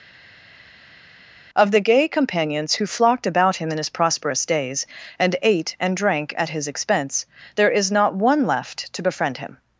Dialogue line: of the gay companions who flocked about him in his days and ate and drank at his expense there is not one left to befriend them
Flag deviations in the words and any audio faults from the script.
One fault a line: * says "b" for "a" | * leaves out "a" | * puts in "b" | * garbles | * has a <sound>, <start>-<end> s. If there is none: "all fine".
* puts in "prosperous"
* says "him" for "them"